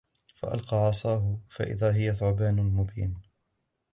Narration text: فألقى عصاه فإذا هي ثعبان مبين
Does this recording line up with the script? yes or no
yes